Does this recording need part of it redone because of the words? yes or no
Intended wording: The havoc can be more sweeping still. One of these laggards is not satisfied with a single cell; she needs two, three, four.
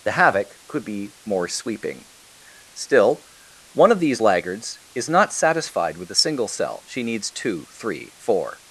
yes